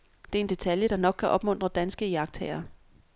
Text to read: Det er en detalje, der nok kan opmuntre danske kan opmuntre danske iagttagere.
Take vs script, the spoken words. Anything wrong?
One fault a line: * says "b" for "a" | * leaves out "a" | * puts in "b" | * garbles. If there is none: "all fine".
* leaves out "kan opmuntre danske"